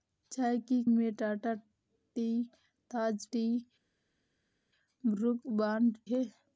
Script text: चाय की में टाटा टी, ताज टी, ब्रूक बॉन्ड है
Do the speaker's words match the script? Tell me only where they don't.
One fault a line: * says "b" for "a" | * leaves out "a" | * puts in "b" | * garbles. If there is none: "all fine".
all fine